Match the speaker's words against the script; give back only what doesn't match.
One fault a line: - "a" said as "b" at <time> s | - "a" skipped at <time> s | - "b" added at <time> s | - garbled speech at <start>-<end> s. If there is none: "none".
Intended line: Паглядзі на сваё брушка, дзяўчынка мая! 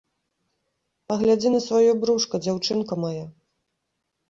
none